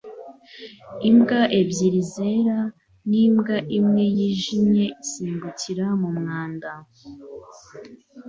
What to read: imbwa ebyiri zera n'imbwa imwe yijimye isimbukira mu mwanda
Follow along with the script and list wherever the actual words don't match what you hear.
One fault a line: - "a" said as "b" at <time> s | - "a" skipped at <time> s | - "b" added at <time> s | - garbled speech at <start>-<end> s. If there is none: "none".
none